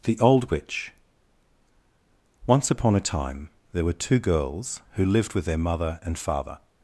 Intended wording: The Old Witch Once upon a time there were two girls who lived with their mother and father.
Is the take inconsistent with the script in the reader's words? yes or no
no